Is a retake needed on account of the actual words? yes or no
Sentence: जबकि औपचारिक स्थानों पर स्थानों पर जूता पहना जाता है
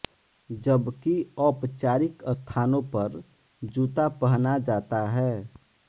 yes